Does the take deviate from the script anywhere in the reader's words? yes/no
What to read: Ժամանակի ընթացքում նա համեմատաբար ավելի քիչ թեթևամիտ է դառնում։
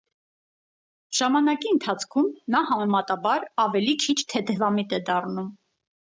no